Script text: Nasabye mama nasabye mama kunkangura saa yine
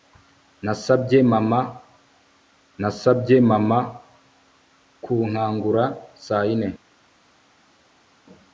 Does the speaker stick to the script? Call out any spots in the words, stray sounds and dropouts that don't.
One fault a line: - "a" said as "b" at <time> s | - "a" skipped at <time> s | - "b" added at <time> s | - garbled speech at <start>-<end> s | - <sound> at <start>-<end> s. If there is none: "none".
none